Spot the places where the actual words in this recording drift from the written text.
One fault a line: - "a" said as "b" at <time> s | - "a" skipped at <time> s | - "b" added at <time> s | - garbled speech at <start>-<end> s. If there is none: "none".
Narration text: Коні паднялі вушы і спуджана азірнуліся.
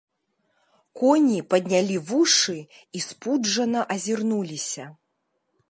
none